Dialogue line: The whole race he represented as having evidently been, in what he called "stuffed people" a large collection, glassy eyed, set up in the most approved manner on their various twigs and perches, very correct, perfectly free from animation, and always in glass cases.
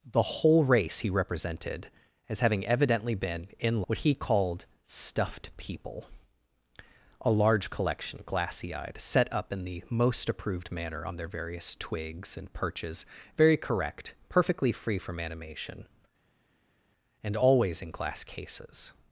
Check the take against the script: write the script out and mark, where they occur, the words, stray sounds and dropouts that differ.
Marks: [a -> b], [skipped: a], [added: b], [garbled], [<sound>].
The whole race he represented as having evidently been, in what he called "stuffed people" a large collection, glassy eyed, set up in the most approved manner on their various twigs and perches, very correct, perfectly free from animation, and always in glass cases.